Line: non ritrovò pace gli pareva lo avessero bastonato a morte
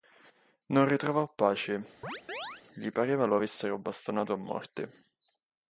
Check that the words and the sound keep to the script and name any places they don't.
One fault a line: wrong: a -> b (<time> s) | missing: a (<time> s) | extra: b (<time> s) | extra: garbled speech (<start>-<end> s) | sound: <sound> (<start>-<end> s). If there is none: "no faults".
sound: chirp (2.0-2.6 s)